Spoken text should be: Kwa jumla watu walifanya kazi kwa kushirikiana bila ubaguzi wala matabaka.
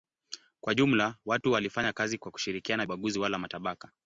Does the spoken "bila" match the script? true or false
false